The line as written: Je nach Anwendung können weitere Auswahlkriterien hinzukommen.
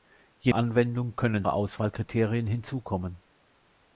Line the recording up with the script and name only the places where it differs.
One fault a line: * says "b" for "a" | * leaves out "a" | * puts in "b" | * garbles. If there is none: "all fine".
* leaves out "nach"
* leaves out "weitere"